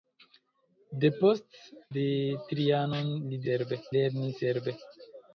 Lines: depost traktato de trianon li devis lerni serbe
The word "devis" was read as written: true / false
false